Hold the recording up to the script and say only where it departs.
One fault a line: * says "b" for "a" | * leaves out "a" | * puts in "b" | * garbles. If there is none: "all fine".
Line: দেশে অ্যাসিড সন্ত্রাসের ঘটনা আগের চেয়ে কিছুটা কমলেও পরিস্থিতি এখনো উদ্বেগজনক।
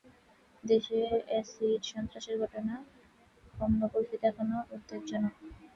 * leaves out "আগের চেয়ে কিছুটা"